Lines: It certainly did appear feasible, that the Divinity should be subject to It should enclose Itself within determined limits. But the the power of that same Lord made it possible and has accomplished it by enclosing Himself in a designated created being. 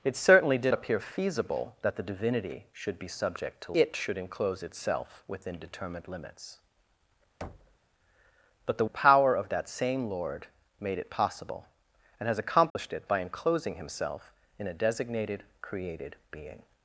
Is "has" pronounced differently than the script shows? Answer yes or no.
no